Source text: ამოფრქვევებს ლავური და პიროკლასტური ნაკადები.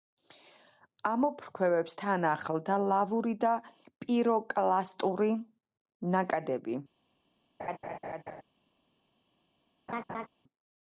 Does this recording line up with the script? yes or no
no